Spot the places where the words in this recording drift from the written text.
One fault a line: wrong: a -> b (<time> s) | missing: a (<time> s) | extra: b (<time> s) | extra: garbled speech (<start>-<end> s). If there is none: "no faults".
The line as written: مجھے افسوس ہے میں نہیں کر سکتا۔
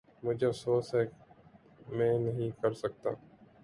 no faults